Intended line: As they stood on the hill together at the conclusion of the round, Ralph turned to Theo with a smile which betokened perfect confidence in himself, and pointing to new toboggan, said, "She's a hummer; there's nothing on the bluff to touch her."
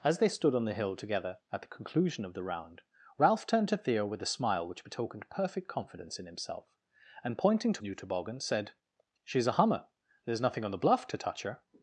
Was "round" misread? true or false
false